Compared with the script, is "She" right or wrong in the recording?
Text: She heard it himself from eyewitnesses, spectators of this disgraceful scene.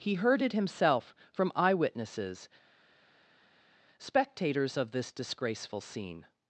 wrong